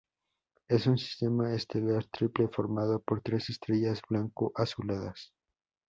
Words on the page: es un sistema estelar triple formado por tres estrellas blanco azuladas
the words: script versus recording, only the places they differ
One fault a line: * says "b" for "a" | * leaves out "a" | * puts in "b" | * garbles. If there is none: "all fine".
all fine